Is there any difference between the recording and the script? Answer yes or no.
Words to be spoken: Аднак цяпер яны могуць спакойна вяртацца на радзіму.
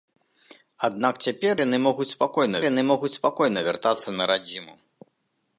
yes